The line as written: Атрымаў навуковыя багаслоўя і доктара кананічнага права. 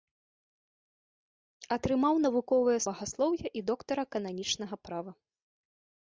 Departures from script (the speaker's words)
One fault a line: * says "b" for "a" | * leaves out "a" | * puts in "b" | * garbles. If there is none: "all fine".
all fine